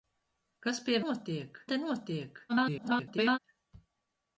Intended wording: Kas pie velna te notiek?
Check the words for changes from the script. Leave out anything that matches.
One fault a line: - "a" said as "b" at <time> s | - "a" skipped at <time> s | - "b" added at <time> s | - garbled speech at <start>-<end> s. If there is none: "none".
- "velna" said as "notiek" at 1.0 s
- garbled speech at 2.5-3.4 s